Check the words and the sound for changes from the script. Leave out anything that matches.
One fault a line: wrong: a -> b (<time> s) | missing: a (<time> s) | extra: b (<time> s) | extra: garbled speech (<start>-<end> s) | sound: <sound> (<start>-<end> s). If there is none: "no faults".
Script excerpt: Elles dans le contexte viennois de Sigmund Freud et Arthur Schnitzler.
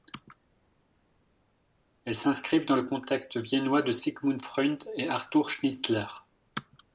extra: s'inscrivent (2.2 s)